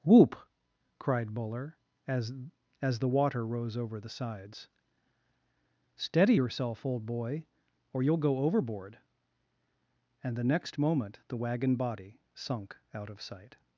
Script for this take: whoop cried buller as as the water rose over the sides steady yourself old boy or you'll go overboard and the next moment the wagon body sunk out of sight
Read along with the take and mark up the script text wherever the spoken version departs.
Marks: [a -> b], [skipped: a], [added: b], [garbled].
whoop cried buller as as the water rose over the sides steady yourself old boy or you'll go overboard and the next moment the wagon body sunk out of sight